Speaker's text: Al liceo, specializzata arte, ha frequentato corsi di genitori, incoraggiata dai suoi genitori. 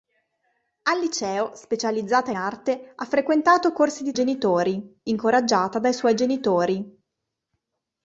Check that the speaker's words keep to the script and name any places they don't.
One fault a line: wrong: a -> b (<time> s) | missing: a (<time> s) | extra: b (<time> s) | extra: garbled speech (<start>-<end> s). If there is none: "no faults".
no faults